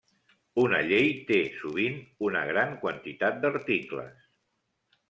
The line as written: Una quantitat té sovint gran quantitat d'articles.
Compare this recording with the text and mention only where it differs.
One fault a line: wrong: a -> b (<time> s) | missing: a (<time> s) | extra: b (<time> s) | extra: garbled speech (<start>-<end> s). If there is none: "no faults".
wrong: quantitat -> llei (0.9 s)
extra: una (2.3 s)